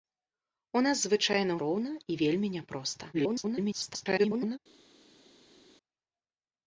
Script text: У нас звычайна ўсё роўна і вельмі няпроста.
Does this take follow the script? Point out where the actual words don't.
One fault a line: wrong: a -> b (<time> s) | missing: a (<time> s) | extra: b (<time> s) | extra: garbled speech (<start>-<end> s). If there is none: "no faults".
missing: ўсё (1.6 s)
extra: garbled speech (3.1-4.6 s)